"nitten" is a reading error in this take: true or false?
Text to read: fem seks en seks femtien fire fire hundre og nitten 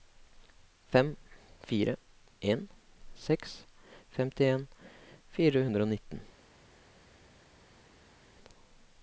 false